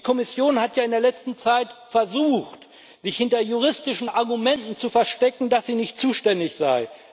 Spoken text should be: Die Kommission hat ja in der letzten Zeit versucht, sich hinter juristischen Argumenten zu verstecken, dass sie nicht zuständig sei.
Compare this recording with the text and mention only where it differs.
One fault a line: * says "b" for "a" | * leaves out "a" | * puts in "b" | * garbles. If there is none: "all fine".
all fine